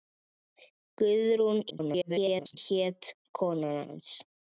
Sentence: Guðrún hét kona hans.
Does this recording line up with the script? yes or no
no